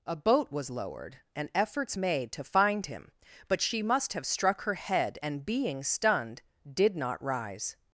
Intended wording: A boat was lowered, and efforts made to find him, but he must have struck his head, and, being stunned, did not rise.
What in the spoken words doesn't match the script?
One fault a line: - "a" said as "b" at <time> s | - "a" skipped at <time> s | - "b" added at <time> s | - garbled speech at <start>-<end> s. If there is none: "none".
- "he" said as "she" at 3.6 s
- "his" said as "her" at 4.6 s